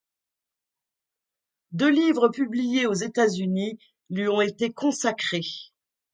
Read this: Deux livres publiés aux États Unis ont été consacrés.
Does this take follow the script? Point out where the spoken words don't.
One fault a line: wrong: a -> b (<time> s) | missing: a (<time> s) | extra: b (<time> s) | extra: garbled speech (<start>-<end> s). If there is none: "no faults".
extra: lui (4.1 s)